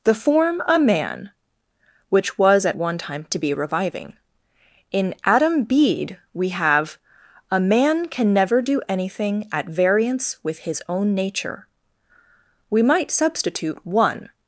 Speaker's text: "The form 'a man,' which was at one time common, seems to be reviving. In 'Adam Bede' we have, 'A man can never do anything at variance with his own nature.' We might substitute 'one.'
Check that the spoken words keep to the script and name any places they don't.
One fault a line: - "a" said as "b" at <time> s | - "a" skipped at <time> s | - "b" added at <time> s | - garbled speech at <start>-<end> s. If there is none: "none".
- "common seems" skipped at 3.3 s